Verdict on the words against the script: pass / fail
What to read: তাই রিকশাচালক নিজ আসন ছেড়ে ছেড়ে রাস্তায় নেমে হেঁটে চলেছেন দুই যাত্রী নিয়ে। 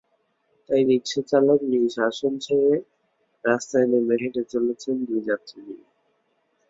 fail